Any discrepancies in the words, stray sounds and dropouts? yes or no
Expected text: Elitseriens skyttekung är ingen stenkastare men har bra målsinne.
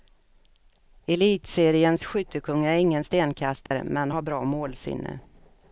yes